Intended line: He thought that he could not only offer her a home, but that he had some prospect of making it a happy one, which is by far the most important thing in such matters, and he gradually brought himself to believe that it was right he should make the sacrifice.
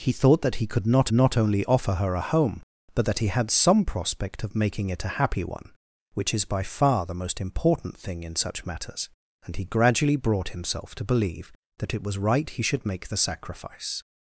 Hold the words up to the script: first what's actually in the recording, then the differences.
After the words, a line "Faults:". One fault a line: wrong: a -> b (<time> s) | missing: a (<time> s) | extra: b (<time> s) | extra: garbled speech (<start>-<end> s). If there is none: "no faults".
He thought that he could not not only offer her a home, but that he had some prospect of making it a happy one, which is by far the most important thing in such matters, and he gradually brought himself to believe that it was right he should make the sacrifice.
Faults:
extra: not (1.1 s)